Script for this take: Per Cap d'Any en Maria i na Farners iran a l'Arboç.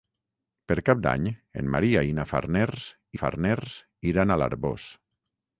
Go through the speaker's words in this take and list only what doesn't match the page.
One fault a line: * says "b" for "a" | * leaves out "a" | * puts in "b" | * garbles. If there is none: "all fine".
* puts in "Farners"